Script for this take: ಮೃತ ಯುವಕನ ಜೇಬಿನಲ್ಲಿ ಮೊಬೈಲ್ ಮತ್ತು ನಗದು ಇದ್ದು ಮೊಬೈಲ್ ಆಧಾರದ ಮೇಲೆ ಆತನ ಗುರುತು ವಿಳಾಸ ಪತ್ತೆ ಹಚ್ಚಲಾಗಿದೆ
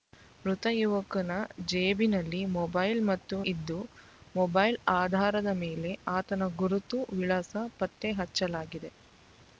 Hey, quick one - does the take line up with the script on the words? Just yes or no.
no